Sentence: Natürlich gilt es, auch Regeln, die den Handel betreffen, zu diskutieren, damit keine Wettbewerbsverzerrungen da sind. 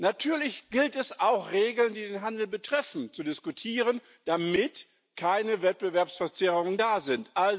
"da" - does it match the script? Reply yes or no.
yes